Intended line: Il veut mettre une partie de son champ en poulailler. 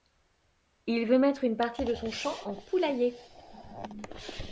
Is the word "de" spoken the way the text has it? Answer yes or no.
yes